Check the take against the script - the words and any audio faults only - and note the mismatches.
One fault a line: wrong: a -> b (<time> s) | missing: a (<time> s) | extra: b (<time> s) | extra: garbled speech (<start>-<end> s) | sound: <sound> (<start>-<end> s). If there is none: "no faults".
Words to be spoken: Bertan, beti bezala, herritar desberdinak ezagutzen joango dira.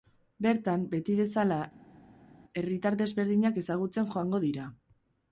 no faults